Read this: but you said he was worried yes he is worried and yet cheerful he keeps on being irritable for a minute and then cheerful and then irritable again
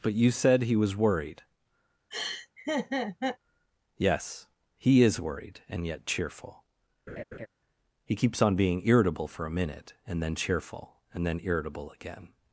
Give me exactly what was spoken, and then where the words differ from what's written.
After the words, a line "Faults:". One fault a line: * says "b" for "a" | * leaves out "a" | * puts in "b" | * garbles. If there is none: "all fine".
but you said he was worried yes he is worried and yet cheerful he keeps on being irritable for a minute and then cheerful and then irritable again
Faults:
all fine